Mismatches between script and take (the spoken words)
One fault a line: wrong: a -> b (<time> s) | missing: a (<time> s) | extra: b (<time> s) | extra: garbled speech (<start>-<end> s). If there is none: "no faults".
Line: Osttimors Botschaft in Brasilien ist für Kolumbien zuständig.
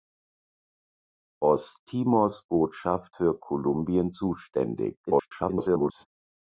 missing: in Brasilien ist (3.1 s)
extra: garbled speech (5.1-6.1 s)